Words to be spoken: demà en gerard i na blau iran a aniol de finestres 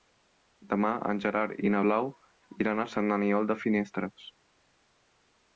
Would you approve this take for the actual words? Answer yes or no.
no